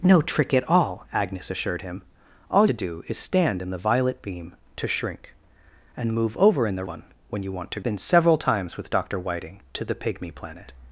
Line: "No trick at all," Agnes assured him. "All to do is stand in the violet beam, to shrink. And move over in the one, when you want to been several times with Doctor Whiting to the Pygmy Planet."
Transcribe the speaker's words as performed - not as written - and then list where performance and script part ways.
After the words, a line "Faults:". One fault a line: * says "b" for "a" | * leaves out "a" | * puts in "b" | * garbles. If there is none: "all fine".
"No trick at all," Agnes assured him. "All to do is stand in the violet beam, to shrink. And move over in the one, when you want to been several times with Doctor Whiting to the Pygmy Planet."
Faults:
all fine